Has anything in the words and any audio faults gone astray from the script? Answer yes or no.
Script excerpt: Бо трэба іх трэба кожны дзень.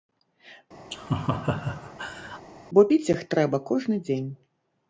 yes